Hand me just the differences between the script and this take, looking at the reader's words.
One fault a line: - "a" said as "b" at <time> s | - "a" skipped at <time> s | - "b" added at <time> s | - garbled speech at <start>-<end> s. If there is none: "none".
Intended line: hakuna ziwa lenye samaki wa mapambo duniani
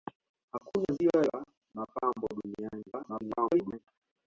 - "lenye samaki" skipped at 1.2 s
- garbled speech at 2.9-3.8 s